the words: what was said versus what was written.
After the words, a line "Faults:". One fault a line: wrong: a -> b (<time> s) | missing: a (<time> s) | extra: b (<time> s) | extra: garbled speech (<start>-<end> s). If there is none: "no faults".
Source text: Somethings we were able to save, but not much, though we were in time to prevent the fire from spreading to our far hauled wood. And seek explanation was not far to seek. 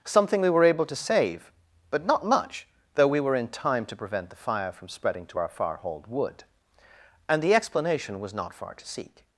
Something we were able to save, but not much, though we were in time to prevent the fire from spreading to our far hauled wood. And the explanation was not far to seek.
Faults:
wrong: Somethings -> Something (0.1 s)
wrong: seek -> the (7.4 s)